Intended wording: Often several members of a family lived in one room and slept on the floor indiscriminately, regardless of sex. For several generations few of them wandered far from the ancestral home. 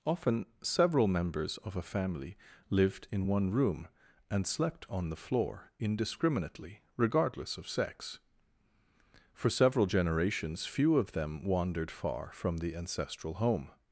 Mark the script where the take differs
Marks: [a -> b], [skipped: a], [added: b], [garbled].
Often several members of a family lived in one room and slept on the floor indiscriminately, regardless of sex. For several generations few of them wandered far from the ancestral home.